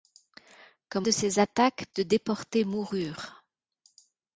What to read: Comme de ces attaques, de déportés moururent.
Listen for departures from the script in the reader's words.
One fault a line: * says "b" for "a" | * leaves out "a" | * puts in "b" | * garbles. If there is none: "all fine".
all fine